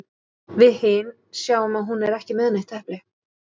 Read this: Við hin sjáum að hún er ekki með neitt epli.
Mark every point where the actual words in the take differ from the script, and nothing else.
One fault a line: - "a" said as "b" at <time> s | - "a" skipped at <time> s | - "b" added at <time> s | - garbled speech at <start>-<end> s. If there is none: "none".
none